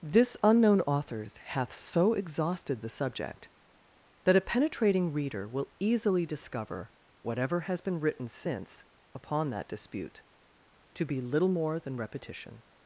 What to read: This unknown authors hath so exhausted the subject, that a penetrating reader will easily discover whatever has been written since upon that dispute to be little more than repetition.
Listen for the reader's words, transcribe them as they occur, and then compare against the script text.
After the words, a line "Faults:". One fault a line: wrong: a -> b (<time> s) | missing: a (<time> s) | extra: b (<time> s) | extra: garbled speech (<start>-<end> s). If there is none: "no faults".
This unknown authors hath so exhausted the subject, that a penetrating reader will easily discover whatever has been written since upon that dispute to be little more than repetition.
Faults:
no faults